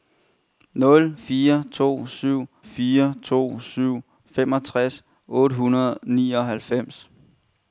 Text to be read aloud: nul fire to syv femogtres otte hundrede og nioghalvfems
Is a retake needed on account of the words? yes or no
yes